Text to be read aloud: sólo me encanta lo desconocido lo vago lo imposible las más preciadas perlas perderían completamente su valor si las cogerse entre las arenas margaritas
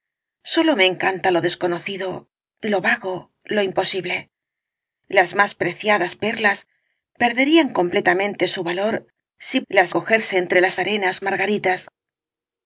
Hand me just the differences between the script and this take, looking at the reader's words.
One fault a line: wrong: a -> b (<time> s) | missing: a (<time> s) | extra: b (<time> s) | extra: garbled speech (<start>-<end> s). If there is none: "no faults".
no faults